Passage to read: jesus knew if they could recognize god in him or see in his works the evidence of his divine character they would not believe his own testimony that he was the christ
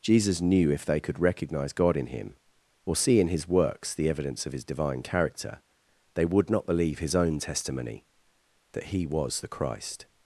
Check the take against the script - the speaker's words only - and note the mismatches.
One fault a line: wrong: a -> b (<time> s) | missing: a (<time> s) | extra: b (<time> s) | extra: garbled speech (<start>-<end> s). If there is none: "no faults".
no faults